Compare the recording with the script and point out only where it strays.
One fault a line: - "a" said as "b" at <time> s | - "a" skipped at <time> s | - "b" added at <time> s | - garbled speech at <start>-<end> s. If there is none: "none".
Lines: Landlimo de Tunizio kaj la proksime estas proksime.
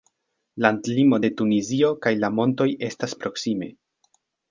- "proksime" said as "montoj" at 2.4 s